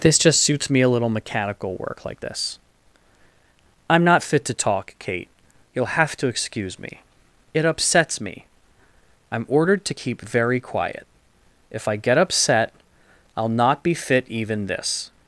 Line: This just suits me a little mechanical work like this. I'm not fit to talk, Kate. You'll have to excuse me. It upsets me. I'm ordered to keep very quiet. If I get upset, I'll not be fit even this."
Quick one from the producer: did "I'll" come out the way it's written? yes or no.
yes